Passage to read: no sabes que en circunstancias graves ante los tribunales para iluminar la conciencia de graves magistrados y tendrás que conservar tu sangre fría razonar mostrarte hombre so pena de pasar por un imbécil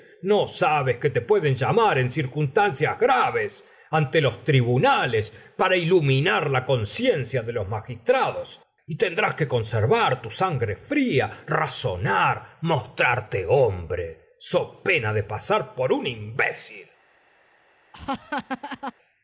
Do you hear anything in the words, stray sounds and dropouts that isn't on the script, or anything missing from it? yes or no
yes